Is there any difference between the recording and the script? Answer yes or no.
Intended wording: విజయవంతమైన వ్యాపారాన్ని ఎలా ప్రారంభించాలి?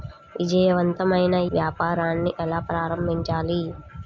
no